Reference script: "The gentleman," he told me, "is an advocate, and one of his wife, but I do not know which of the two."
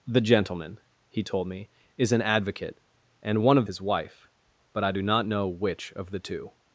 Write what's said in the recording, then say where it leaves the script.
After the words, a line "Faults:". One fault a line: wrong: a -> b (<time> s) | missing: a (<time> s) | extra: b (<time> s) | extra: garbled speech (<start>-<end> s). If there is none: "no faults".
"The gentleman," he told me, "is an advocate, and one of his wife, but I do not know which of the two."
Faults:
no faults